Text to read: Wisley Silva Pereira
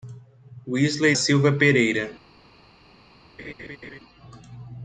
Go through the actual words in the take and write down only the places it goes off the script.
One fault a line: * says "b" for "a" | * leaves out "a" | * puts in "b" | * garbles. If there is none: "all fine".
all fine